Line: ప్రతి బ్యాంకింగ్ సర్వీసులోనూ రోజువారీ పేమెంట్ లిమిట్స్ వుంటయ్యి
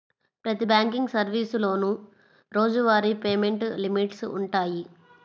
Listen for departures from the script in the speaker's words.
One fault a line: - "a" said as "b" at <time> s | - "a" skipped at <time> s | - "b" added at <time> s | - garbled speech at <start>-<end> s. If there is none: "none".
none